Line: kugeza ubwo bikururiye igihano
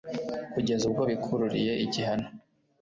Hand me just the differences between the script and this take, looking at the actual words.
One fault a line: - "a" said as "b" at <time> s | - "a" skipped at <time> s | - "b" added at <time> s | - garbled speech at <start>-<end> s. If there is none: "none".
none